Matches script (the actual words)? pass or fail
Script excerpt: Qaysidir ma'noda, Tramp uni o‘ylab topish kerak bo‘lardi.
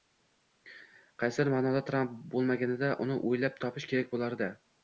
fail